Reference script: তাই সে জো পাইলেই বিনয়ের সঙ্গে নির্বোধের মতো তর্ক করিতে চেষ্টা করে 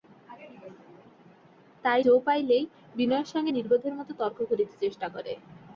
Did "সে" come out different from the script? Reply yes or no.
yes